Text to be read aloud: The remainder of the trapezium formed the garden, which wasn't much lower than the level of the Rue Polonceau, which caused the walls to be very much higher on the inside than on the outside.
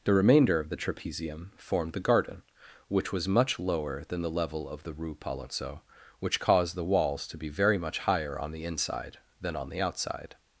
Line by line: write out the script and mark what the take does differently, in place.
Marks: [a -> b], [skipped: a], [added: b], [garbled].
The remainder of the trapezium formed the garden, which [wasn't -> was] much lower than the level of the Rue Polonceau, which caused the walls to be very much higher on the inside than on the outside.